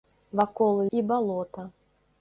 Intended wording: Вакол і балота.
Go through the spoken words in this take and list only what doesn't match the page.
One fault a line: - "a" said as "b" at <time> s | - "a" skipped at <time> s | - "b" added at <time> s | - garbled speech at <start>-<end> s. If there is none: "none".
none